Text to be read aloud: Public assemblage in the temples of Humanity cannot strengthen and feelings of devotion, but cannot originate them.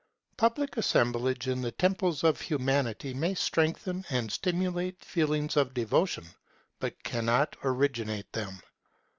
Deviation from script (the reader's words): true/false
true